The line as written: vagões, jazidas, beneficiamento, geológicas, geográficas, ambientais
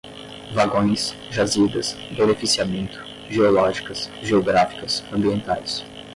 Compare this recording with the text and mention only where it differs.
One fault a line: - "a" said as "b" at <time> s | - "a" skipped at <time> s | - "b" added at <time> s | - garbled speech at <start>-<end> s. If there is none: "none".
none